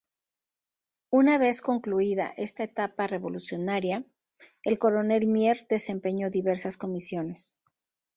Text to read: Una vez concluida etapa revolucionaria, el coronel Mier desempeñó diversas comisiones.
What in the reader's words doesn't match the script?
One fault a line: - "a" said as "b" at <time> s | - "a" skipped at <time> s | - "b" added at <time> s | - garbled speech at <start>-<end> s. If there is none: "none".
- "esta" added at 2.4 s